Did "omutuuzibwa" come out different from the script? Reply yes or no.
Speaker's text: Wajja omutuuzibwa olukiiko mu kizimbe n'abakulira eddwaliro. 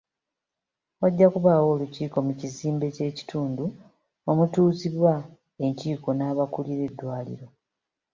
yes